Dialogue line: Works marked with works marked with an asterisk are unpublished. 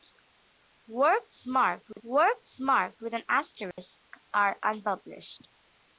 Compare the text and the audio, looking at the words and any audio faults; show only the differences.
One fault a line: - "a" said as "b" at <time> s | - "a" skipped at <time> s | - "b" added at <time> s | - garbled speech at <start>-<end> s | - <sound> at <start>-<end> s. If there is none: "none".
- dropout at 1.9-2.0 s
- dropout at 3.7-3.8 s